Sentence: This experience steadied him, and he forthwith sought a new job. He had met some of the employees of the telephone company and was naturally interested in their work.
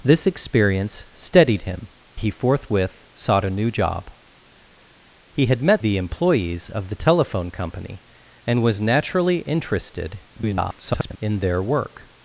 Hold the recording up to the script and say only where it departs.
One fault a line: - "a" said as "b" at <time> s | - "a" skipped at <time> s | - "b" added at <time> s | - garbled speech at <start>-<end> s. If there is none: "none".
- "and" skipped at 1.9 s
- "some of" skipped at 5.8 s
- garbled speech at 10.4-11.2 s